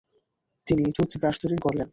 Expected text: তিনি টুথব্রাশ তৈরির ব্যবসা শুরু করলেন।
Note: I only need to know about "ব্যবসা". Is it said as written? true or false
false